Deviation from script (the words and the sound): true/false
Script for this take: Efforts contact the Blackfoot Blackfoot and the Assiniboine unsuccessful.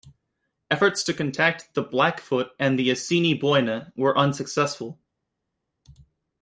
true